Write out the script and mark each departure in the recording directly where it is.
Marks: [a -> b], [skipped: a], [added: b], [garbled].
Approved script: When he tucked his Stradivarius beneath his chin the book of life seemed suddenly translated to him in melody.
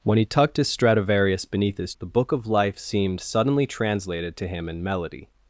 When he tucked his Stradivarius beneath his [skipped: chin] the book of life seemed suddenly translated to him in melody.